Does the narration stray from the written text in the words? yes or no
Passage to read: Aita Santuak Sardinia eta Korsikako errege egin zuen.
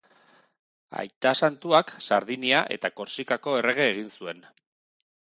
no